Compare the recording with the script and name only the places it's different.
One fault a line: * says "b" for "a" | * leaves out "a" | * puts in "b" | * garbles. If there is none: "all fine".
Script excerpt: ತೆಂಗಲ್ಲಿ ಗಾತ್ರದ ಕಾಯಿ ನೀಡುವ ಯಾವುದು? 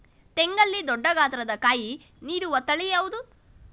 * puts in "ದೊಡ್ಡ"
* puts in "ತಳಿ"